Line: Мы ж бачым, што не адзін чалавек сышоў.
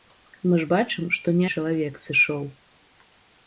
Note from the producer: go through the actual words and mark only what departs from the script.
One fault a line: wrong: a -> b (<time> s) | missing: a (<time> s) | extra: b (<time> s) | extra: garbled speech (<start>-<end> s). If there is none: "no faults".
missing: адзін (1.5 s)